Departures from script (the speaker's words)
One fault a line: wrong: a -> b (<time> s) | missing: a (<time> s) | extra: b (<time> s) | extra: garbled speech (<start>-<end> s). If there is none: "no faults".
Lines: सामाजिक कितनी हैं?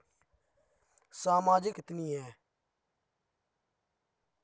no faults